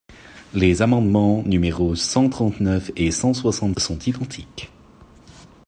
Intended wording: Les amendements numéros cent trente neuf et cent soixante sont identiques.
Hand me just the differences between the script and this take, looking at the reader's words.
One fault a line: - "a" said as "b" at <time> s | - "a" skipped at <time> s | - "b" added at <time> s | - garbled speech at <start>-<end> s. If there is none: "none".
none